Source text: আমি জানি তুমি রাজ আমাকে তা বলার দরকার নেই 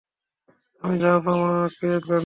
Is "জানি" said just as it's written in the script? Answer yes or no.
no